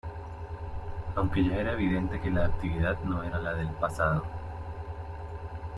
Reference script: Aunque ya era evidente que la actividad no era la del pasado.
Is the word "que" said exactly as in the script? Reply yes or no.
yes